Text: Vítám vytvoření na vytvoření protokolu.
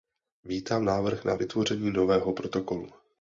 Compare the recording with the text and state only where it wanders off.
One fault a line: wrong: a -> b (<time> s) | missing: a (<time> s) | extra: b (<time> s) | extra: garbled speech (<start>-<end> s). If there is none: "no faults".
wrong: vytvoření -> návrh (0.8 s)
extra: nového (1.9 s)